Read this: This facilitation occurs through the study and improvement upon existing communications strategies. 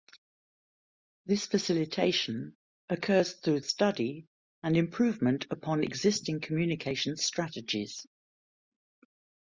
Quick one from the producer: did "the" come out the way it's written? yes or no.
no